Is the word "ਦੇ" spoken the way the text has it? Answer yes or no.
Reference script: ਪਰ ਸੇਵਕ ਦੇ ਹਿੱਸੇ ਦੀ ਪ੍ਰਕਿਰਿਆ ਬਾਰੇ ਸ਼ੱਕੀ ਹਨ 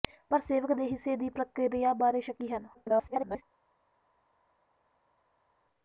yes